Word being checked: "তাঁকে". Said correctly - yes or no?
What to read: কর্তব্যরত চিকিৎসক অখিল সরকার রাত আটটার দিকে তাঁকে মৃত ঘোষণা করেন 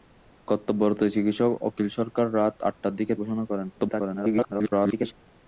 no